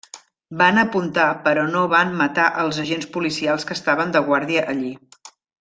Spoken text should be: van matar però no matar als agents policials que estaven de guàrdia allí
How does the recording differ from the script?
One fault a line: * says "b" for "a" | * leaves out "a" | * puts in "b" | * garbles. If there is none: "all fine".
* says "apuntar" for "matar"
* puts in "van"